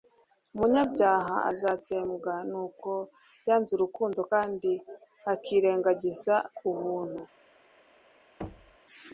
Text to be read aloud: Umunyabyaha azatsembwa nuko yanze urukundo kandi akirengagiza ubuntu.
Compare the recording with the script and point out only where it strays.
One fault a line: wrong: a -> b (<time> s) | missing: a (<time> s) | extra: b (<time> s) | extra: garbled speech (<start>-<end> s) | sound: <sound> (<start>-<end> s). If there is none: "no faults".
sound: thud (8.4-8.8 s)